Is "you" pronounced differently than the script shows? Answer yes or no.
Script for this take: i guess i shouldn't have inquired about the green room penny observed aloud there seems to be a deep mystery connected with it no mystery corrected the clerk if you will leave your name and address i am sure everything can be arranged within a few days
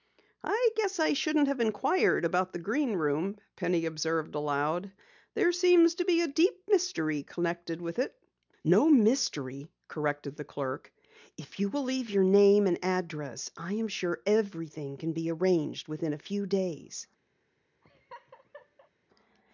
no